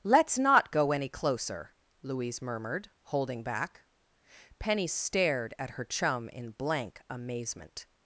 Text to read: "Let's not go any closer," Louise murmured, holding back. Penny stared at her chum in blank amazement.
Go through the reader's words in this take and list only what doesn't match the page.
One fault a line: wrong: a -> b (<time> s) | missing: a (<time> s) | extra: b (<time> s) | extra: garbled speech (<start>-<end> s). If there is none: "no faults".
no faults